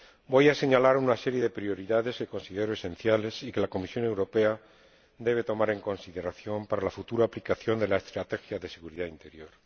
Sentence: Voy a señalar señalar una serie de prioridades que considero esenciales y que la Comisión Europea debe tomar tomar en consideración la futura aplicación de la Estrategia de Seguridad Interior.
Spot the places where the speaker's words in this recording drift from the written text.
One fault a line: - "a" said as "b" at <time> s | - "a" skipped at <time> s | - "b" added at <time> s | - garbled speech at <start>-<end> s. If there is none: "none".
- "señalar" skipped at 1.0 s
- "tomar" skipped at 5.7 s
- "para" added at 6.7 s